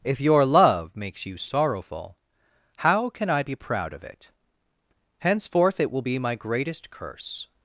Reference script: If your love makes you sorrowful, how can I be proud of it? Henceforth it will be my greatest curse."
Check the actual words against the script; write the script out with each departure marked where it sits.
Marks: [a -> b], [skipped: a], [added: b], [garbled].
If your love makes you sorrowful, how can I be proud of it? Henceforth it will be my greatest curse."